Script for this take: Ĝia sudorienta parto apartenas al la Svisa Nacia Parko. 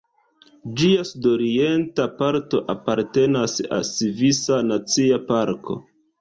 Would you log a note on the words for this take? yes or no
yes